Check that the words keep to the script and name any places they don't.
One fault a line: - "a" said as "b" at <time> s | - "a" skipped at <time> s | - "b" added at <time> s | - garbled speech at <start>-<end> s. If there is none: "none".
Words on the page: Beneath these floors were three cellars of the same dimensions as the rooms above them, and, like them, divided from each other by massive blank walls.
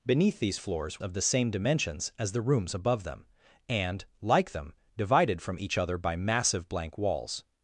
- "were three cellars" skipped at 1.0 s